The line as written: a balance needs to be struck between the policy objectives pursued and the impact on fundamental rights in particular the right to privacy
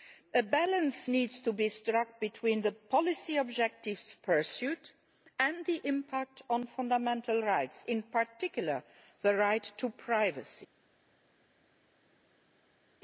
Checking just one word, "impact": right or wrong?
right